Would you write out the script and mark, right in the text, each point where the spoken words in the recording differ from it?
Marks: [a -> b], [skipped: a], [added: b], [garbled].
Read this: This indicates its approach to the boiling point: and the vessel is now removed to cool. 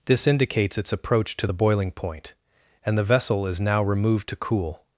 This indicates its approach to the boiling point: and the vessel is now removed to cool.